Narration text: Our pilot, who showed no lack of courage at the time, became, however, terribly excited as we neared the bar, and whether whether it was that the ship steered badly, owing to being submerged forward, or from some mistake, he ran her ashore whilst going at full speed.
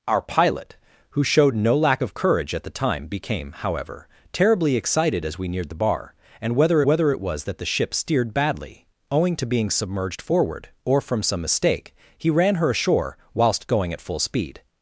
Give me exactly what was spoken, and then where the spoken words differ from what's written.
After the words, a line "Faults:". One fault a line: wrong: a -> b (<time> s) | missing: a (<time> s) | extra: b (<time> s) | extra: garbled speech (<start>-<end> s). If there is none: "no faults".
Our pilot, who showed no lack of courage at the time, became, however, terribly excited as we neared the bar, and whether whether it was that the ship steered badly, owing to being submerged forward, or from some mistake, he ran her ashore whilst going at full speed.
Faults:
no faults